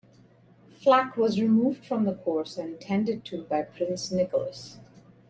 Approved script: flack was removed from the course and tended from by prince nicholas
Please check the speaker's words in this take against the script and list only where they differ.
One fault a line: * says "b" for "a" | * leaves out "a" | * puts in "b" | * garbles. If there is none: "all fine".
* says "to" for "from"